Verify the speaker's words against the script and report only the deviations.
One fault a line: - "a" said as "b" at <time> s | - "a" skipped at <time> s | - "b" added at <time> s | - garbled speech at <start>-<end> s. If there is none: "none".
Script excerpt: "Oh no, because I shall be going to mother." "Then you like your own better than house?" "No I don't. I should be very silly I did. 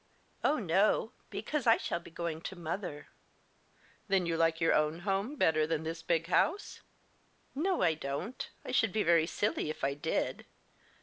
- "home" added at 5.0 s
- "this big" added at 5.8 s
- "if" added at 9.7 s